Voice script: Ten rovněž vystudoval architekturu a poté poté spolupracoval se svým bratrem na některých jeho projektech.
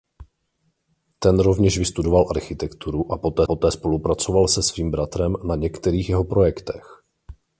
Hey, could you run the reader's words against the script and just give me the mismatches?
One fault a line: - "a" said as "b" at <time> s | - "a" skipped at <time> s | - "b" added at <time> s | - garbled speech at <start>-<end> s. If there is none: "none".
none